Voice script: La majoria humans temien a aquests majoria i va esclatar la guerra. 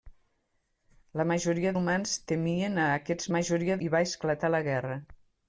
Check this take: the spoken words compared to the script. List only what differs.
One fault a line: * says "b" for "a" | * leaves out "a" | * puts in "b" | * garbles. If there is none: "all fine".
all fine